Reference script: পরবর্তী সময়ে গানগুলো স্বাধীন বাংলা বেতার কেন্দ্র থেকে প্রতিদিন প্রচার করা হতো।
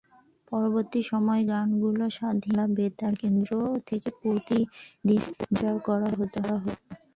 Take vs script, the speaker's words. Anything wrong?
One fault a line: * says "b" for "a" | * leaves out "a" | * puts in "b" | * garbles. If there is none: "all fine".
all fine